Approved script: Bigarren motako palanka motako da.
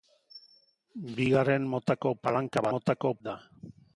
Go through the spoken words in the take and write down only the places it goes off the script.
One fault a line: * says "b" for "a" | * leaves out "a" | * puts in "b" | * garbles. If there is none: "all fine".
all fine